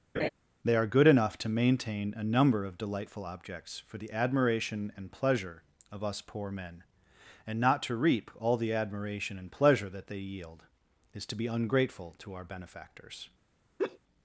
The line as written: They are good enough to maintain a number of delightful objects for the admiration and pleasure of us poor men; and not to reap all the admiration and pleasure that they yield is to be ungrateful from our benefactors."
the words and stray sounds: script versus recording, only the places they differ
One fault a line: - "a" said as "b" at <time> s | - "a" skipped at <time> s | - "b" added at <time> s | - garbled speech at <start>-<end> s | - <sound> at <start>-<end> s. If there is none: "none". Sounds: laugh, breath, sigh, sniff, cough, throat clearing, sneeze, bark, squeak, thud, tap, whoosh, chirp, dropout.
- laugh at 0.1-0.3 s
- "from" said as "to" at 12.2 s
- laugh at 13.8-14.0 s